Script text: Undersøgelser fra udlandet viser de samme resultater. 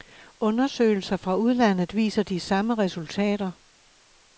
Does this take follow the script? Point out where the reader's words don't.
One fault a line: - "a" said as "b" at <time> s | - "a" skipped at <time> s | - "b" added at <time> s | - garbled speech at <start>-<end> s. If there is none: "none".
none